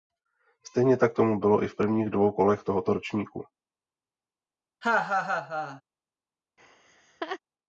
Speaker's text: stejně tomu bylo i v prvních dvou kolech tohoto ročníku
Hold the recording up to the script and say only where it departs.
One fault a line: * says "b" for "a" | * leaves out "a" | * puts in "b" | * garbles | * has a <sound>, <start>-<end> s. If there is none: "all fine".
* puts in "tak"
* has a laugh, 4.8-5.8 s
* has a laugh, 6.6-7.4 s